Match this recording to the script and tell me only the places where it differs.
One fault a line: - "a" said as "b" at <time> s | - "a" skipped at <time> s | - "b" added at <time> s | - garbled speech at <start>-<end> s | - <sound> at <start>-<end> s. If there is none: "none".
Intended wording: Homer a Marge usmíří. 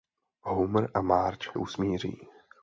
none